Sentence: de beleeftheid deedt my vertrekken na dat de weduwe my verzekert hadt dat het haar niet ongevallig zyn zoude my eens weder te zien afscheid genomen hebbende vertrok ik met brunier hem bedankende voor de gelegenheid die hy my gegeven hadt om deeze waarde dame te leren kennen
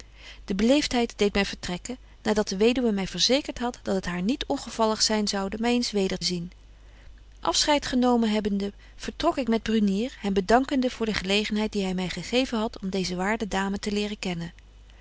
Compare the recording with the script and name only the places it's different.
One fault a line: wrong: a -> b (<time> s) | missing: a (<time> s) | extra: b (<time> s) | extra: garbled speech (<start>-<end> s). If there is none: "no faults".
missing: te (6.2 s)